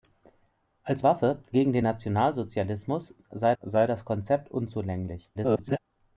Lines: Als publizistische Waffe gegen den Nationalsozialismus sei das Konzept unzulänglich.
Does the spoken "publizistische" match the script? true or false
false